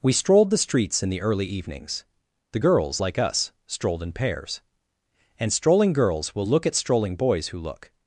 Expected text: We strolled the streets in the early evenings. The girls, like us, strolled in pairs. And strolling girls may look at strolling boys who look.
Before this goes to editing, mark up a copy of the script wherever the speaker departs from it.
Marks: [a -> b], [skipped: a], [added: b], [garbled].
We strolled the streets in the early evenings. The girls, like us, strolled in pairs. And strolling girls [may -> will] look at strolling boys who look.